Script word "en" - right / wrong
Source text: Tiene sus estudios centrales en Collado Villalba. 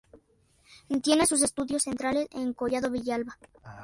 right